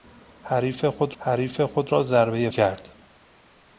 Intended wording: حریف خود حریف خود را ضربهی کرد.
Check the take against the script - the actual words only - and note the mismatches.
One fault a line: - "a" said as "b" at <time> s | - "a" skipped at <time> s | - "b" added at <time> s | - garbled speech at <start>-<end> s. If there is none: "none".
none